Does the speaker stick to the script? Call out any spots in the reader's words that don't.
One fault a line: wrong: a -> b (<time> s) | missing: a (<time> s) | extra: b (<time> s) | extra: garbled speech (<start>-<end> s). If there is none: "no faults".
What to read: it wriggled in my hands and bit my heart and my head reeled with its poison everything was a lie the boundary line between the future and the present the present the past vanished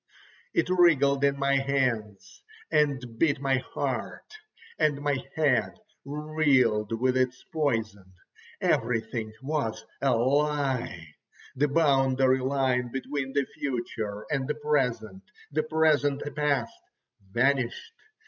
no faults